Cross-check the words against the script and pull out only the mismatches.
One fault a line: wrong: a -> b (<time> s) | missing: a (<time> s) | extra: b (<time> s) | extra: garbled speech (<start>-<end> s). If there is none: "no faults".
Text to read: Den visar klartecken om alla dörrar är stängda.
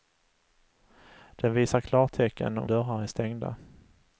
missing: alla (2.7 s)